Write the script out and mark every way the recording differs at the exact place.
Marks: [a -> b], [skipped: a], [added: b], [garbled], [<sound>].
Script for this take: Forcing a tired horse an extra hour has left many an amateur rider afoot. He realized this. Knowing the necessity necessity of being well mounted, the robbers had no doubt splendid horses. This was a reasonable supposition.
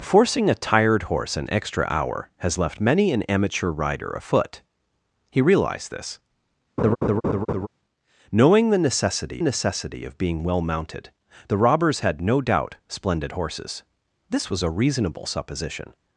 Forcing a tired horse an extra hour has left many an amateur rider afoot. He realized this. [laugh] Knowing the necessity necessity of being well mounted, the robbers had no doubt splendid horses. This was a reasonable supposition.